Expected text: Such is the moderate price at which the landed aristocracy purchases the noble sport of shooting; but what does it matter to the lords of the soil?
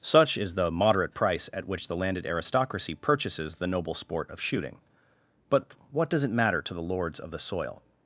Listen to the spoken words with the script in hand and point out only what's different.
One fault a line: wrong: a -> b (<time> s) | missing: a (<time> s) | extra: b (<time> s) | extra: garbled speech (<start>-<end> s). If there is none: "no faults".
no faults